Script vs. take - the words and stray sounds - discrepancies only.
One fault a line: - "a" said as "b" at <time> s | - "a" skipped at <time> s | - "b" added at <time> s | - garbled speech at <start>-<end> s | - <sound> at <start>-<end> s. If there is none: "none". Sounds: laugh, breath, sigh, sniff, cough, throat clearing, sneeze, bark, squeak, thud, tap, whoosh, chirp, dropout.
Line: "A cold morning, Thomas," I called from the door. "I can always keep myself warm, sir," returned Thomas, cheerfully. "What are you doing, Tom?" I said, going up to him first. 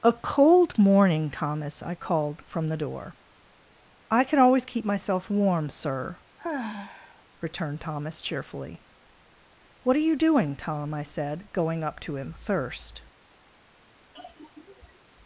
- sigh at 6.4-7.2 s
- "first" said as "thirst" at 12.4 s
- sigh at 14.1-15.1 s